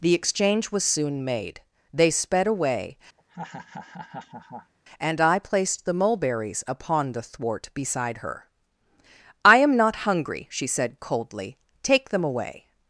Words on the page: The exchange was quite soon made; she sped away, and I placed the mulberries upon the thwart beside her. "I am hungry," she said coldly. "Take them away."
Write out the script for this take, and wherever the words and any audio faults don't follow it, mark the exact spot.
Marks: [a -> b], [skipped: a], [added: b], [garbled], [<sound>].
The exchange was [skipped: quite] soon made; [she -> they] sped away, [laugh] and I placed the mulberries upon the thwart beside her. "I am [added: not] hungry," she said coldly. "Take them away."